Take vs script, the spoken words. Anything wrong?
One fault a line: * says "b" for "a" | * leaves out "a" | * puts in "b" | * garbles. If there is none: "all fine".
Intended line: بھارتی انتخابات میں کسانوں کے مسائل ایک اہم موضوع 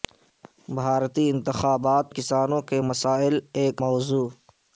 * leaves out "میں"
* leaves out "اہم"